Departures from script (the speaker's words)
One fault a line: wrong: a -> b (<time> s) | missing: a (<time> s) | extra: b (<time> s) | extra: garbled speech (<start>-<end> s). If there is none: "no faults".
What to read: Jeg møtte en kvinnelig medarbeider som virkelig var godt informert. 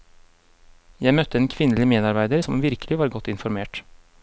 no faults